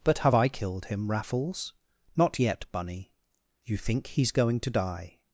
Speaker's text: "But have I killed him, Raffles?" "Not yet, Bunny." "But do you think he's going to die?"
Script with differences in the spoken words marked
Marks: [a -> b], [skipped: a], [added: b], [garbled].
"But have I killed him, Raffles?" "Not yet, Bunny." [skipped: "But do] you think he's going to die?"